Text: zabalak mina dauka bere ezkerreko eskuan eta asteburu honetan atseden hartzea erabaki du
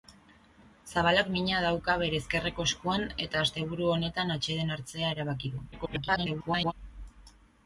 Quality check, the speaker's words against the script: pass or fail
fail